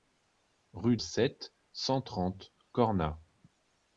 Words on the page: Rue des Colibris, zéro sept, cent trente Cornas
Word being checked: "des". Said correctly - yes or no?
no